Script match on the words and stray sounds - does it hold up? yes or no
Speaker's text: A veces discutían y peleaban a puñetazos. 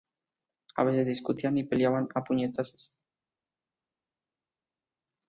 yes